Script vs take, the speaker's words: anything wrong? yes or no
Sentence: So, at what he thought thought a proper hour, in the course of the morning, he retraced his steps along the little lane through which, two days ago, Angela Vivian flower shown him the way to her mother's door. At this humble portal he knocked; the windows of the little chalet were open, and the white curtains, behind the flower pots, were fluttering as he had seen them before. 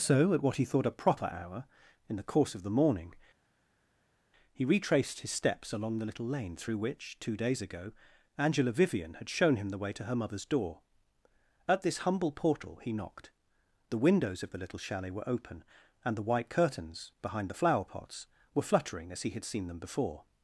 yes